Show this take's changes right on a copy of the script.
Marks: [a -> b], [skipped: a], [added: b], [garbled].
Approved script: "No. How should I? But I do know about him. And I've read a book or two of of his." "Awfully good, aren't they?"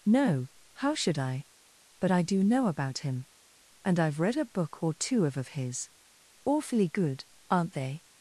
"No. How should I? But I do know about him. And I've read a book or two of of his." "Awfully good, aren't they?"